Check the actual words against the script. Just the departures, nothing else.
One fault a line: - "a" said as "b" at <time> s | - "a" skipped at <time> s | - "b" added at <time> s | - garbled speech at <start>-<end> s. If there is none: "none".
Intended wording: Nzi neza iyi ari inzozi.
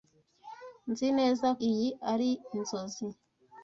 none